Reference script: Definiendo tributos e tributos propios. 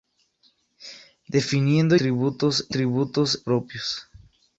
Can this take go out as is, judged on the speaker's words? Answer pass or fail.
pass